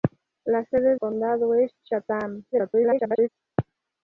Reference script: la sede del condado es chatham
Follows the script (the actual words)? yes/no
no